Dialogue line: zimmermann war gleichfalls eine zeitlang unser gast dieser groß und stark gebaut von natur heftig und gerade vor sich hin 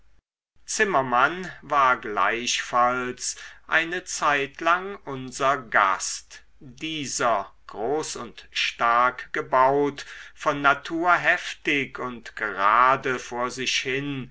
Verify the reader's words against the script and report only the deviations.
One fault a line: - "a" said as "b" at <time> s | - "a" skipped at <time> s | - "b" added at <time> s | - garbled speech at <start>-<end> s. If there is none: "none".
none